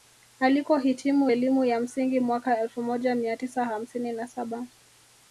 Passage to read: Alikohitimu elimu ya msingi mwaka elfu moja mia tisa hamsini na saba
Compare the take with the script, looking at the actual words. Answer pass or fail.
pass